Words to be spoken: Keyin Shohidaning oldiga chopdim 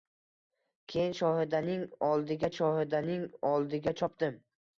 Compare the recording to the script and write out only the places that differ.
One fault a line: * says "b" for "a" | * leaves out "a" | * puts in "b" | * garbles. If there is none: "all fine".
* puts in "Shohidaning oldiga"